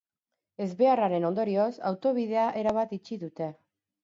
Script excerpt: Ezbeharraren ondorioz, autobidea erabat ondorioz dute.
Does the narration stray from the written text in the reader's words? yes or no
yes